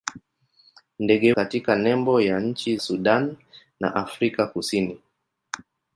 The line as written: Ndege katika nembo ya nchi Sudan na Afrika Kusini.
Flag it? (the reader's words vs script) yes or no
no